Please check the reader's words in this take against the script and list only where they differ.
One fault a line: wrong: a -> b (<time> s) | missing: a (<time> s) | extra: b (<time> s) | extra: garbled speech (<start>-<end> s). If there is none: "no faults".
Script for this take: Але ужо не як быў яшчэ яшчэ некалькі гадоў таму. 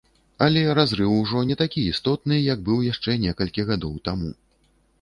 extra: разрыў (0.8 s)
extra: такі істотны (1.6 s)
missing: яшчэ (3.2 s)